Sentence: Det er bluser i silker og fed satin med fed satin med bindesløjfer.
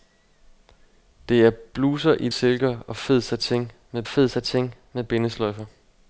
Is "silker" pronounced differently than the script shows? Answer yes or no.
no